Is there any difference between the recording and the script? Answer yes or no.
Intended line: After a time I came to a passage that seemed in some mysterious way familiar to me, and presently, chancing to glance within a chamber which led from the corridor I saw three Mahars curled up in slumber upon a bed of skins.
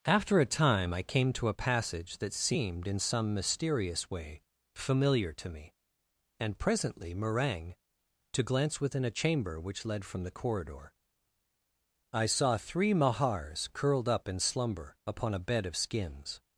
yes